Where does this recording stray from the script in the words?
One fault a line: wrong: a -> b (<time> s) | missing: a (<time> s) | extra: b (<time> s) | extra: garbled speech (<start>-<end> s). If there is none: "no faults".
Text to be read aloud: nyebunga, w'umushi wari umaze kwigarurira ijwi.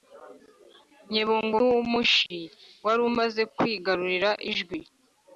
no faults